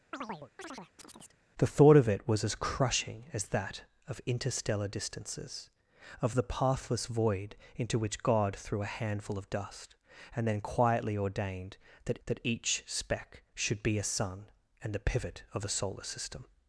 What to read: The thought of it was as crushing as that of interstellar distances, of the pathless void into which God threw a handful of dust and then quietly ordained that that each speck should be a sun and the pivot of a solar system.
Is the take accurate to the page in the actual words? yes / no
yes